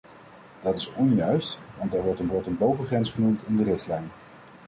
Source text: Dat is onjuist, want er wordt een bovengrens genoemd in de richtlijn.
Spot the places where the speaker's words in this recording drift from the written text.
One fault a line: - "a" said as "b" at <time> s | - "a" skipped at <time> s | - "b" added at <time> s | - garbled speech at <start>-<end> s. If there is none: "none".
- "wordt een" added at 2.3 s